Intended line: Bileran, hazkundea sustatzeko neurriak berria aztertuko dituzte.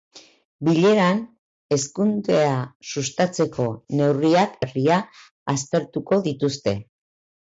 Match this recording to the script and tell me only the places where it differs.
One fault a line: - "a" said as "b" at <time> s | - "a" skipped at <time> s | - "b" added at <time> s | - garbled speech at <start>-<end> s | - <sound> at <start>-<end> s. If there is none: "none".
none